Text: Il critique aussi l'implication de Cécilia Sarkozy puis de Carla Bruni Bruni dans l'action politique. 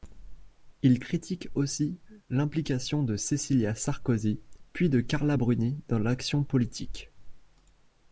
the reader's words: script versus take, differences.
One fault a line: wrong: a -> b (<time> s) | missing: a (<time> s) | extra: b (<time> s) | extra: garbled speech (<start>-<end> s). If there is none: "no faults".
missing: Bruni (5.8 s)